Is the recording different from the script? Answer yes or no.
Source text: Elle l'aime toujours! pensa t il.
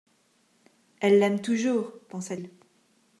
yes